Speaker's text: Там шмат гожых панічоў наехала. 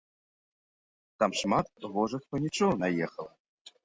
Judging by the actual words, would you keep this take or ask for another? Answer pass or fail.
pass